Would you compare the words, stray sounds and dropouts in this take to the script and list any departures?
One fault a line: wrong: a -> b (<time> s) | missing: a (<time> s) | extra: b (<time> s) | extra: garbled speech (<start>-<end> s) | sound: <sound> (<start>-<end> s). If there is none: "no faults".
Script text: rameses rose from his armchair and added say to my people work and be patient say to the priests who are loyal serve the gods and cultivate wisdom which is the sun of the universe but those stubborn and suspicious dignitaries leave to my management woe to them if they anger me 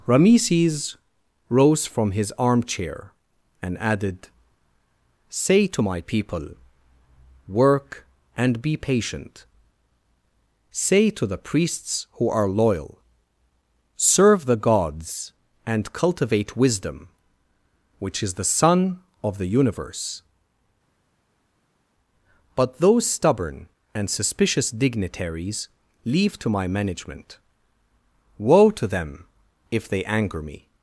no faults